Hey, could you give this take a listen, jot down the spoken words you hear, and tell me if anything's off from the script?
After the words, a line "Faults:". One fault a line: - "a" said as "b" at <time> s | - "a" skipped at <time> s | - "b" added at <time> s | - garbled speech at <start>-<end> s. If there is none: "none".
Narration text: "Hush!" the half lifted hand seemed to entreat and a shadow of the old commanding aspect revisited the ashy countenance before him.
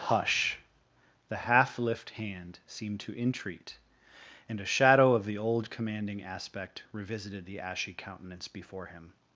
"Hush!" the half lift hand seemed to entreat and a shadow of the old commanding aspect revisited the ashy countenance before him.
Faults:
- "lifted" said as "lift" at 1.8 s